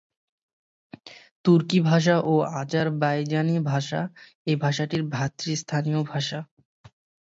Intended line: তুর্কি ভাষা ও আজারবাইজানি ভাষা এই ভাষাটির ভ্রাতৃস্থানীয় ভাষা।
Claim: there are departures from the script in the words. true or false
false